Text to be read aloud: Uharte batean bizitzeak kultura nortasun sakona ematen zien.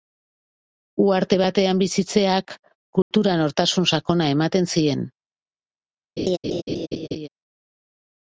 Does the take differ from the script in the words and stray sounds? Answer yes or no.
yes